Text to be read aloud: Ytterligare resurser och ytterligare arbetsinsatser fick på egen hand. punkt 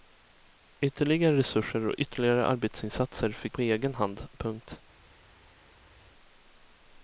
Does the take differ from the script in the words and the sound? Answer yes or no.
no